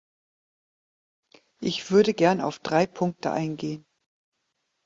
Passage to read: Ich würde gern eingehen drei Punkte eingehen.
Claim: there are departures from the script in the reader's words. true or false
true